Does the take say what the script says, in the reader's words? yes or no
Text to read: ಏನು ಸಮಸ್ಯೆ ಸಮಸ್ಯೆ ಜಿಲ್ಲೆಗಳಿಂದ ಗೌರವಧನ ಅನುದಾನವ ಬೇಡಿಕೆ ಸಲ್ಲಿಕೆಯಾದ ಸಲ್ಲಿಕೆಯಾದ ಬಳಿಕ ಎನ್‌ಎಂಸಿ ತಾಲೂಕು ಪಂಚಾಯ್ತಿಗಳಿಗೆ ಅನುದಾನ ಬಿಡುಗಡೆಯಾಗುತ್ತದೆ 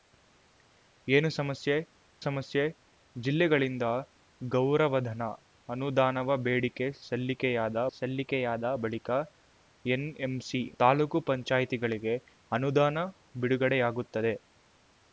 yes